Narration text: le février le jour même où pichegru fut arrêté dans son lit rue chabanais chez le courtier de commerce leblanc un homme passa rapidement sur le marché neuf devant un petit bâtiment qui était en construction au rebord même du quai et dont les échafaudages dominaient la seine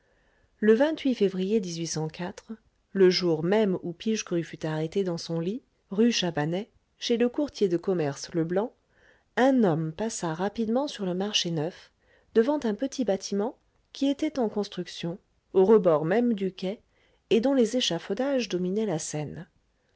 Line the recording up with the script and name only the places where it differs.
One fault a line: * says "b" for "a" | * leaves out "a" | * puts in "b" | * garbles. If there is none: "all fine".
all fine